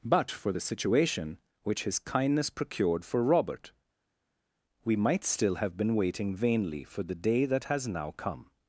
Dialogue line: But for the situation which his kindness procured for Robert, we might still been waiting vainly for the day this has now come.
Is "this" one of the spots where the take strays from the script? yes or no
yes